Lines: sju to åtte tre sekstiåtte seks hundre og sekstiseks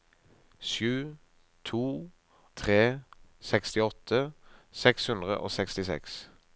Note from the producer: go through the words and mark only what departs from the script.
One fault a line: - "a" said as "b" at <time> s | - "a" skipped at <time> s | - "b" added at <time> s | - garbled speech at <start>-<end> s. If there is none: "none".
- "åtte" skipped at 1.8 s